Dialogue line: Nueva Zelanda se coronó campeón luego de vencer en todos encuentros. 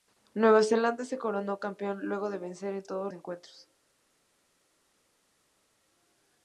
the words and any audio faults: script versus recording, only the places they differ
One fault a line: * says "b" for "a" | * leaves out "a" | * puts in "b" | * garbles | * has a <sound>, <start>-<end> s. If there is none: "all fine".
all fine